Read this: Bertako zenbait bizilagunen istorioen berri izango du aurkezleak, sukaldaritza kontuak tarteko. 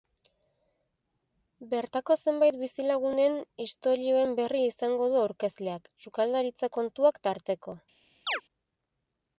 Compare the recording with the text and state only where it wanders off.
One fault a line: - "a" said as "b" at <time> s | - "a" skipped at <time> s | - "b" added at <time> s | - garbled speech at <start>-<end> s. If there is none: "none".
none